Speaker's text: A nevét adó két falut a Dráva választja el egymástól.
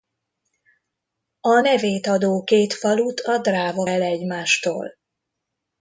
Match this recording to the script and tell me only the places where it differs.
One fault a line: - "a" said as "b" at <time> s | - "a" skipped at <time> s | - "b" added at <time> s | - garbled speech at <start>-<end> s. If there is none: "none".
- "választja" skipped at 3.9 s